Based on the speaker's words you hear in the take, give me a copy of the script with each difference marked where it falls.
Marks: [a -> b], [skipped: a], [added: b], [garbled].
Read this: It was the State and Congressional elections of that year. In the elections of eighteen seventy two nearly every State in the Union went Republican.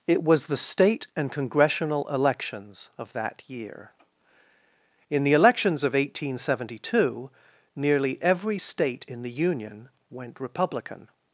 It was the State and Congressional elections of that year. In the elections of eighteen seventy two nearly every State in the Union went Republican.